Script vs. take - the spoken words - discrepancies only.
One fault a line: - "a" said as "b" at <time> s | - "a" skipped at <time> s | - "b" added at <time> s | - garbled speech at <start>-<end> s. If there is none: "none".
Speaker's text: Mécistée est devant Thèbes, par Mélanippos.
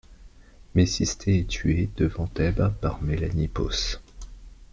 - "tué" added at 1.5 s